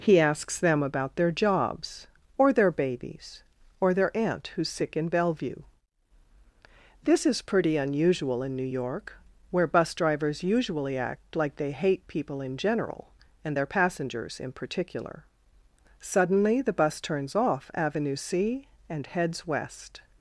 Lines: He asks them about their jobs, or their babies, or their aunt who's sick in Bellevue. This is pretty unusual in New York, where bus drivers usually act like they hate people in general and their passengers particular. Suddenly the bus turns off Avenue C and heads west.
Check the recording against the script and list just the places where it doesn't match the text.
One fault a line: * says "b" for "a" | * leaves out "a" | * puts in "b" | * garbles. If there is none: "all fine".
* puts in "in"